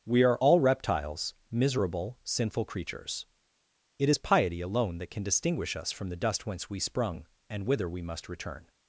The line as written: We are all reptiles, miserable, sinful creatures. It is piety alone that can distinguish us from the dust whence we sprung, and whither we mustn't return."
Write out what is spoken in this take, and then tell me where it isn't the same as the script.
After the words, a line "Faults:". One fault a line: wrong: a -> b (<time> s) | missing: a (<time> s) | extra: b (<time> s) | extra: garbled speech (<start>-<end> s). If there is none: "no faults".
We are all reptiles, miserable, sinful creatures. It is piety alone that can distinguish us from the dust whence we sprung, and whither we must return."
Faults:
wrong: mustn't -> must (8.0 s)